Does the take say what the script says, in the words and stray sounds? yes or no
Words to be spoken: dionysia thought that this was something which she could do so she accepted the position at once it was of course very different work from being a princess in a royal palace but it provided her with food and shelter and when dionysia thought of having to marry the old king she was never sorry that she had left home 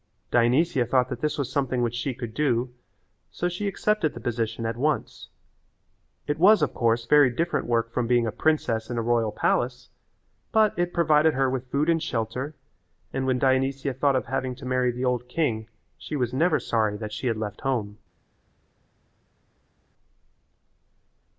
yes